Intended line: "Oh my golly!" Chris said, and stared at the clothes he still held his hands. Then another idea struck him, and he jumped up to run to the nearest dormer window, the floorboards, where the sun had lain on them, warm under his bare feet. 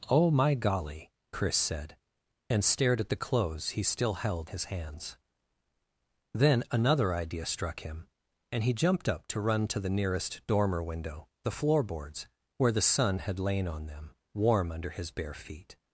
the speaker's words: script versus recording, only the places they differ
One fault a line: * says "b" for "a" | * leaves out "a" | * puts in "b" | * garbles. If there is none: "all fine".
all fine